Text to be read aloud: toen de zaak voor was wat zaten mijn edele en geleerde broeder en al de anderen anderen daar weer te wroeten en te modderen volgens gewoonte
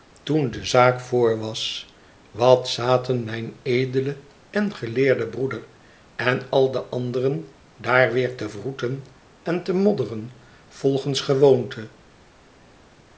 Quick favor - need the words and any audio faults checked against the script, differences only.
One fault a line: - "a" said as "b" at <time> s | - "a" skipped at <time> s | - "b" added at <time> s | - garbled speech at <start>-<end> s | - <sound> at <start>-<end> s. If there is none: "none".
- "anderen" skipped at 7.5 s